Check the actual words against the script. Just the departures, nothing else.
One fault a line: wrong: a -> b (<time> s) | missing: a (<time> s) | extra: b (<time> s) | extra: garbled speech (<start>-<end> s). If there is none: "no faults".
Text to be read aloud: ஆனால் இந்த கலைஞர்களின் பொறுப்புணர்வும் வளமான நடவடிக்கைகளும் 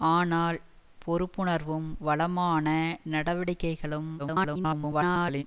missing: இந்த கலைஞர்களின் (0.6 s)
extra: garbled speech (4.2-5.4 s)